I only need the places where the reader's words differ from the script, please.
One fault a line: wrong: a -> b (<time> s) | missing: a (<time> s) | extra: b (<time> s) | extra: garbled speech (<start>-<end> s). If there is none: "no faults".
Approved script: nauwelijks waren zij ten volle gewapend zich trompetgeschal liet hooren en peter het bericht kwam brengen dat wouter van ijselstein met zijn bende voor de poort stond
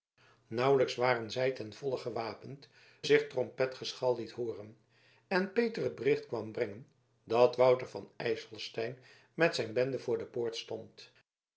no faults